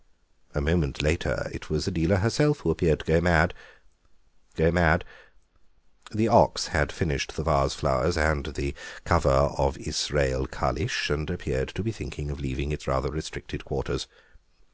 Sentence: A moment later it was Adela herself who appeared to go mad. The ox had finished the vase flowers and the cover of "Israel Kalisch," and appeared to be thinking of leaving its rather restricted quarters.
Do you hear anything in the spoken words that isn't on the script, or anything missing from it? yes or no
yes